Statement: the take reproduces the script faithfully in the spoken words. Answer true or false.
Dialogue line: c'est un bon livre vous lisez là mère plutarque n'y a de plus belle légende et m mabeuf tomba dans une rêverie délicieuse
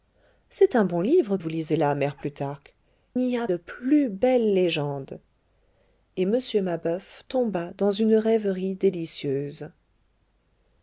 true